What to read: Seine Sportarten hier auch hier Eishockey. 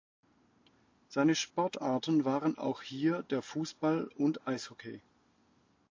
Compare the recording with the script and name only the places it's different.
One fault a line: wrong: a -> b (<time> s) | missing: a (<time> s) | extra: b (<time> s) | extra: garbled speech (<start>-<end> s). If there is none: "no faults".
wrong: hier -> waren (2.2 s)
extra: der Fußball und (3.3 s)